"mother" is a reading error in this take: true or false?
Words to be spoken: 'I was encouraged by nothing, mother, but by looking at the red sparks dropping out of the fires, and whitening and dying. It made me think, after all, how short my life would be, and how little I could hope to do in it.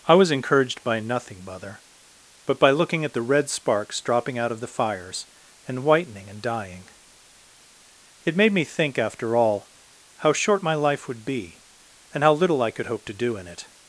false